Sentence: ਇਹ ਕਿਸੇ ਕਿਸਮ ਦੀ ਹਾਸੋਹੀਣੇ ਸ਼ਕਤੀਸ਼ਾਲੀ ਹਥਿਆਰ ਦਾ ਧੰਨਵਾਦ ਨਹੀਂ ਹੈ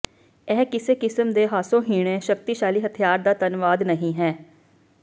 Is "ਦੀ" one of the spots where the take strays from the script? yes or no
yes